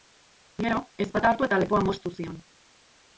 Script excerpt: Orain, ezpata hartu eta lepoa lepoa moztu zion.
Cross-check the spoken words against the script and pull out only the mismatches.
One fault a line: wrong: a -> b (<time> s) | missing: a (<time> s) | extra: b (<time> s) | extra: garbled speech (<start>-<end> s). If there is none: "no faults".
wrong: Orain -> Gero (0.6 s)
missing: lepoa (1.8 s)